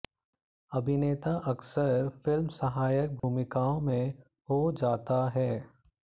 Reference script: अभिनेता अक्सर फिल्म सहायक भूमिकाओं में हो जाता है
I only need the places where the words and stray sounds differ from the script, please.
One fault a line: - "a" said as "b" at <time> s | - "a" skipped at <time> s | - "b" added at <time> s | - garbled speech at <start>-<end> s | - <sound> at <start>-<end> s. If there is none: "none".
- dropout at 3.2-3.2 s